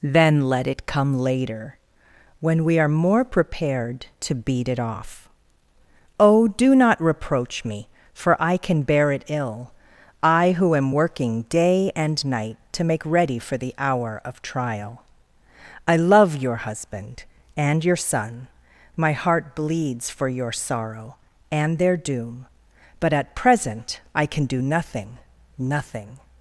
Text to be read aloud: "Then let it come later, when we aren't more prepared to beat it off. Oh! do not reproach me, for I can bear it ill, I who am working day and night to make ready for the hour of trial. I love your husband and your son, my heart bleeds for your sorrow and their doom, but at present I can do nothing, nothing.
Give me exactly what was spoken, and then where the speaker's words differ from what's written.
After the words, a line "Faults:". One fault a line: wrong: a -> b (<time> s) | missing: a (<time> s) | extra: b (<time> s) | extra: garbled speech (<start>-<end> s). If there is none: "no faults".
"Then let it come later, when we are more prepared to beat it off. Oh! do not reproach me, for I can bear it ill, I who am working day and night to make ready for the hour of trial. I love your husband and your son, my heart bleeds for your sorrow and their doom, but at present I can do nothing, nothing.
Faults:
wrong: aren't -> are (2.8 s)